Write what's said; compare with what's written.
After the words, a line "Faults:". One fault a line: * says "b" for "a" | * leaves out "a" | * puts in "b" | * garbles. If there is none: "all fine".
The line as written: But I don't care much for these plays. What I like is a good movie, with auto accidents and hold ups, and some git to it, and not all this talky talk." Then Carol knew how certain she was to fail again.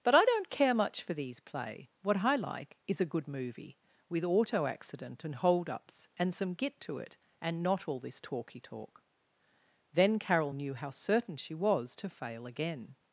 But I don't care much for these play. What I like is a good movie, with auto accident and hold ups, and some git to it, and not all this talky talk." Then Carol knew how certain she was to fail again.
Faults:
* says "play" for "plays"
* says "accident" for "accidents"